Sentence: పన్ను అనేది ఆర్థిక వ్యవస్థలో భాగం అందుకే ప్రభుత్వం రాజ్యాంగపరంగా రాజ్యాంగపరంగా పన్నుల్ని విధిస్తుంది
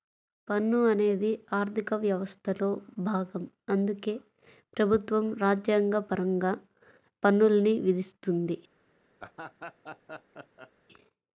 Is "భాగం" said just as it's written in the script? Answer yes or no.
yes